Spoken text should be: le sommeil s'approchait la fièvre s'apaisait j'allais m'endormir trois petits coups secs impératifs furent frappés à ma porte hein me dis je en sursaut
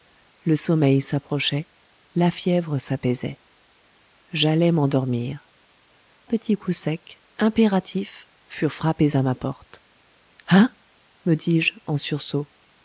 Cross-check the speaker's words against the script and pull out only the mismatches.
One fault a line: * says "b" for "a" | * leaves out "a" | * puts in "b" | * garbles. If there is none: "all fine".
* leaves out "trois"